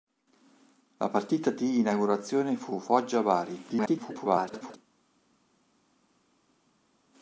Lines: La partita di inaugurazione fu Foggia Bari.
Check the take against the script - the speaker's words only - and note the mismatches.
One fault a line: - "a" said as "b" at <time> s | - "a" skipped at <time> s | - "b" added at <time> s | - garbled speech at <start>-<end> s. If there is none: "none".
- garbled speech at 3.7-4.8 s